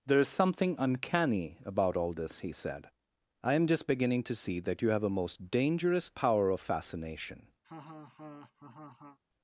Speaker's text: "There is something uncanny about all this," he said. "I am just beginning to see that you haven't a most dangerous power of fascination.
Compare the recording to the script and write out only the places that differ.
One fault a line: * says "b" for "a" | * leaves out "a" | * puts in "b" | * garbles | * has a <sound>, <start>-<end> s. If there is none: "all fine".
* says "have" for "haven't"
* has a laugh, 7.6-9.2 s